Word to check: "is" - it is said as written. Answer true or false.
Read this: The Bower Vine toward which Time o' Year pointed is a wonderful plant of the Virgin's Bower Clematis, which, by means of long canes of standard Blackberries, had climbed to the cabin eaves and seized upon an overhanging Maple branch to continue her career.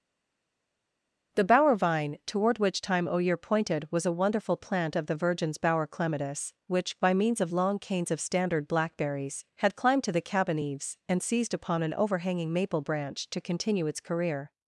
false